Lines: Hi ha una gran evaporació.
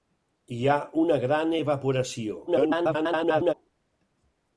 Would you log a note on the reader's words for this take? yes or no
yes